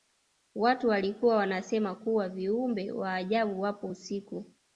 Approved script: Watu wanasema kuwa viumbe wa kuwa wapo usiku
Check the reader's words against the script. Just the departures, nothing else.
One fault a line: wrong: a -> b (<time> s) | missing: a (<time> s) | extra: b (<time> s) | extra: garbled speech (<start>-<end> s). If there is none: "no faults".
extra: walikuwa (0.9 s)
wrong: kuwa -> ajabu (3.1 s)